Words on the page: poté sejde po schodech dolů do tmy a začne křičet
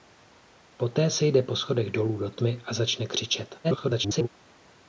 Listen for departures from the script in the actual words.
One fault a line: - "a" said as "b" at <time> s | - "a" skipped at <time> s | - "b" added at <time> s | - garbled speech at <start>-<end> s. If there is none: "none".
- garbled speech at 3.6-4.3 s